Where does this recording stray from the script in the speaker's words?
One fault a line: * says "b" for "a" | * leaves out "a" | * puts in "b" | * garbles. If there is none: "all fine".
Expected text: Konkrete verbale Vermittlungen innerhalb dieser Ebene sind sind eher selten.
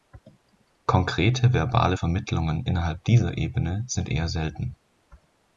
* leaves out "sind"